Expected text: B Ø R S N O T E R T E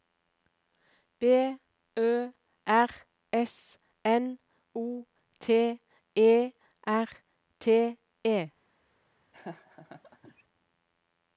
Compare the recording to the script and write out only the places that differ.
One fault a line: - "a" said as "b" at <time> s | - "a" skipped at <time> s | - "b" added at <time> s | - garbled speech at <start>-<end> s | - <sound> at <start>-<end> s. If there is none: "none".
- laugh at 9.3-10.4 s